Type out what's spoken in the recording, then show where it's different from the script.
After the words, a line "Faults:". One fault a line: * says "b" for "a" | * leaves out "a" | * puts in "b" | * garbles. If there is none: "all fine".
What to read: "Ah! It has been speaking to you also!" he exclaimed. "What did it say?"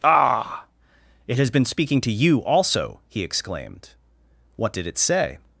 "Ah! It has been speaking to you also!" he exclaimed. "What did it say?"
Faults:
all fine